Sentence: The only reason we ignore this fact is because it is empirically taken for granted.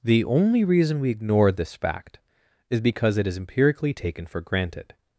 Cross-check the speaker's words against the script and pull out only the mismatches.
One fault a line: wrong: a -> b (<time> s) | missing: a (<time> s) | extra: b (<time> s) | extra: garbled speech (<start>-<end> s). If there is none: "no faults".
no faults